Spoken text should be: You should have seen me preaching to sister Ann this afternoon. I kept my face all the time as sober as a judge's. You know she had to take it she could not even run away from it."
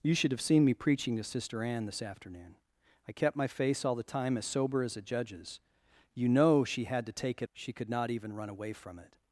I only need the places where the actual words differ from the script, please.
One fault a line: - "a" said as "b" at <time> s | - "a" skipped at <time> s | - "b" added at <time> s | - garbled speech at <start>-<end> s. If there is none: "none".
none